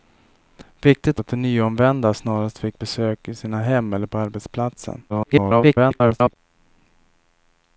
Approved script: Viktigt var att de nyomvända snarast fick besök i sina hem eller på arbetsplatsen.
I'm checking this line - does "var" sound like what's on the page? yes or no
no